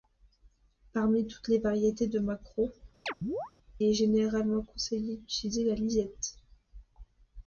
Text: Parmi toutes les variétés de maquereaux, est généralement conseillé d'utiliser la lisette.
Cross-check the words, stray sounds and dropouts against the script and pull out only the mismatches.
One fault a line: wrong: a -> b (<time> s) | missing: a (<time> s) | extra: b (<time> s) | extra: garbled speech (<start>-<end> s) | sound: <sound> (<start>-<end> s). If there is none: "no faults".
sound: chirp (3.1-3.5 s)